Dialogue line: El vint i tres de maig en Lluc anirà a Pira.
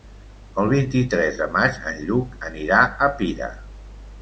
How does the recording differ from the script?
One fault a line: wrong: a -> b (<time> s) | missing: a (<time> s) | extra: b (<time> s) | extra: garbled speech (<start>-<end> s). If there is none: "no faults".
no faults